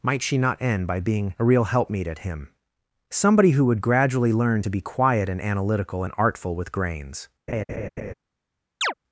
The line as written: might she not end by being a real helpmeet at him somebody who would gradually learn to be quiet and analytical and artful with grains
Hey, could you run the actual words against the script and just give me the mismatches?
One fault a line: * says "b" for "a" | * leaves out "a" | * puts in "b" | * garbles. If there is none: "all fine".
all fine